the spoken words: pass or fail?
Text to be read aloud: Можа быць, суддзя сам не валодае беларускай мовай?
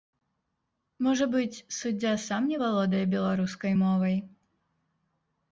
pass